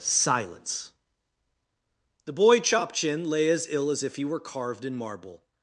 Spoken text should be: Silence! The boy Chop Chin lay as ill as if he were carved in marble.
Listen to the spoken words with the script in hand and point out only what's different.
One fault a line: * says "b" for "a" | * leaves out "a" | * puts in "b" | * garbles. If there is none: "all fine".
all fine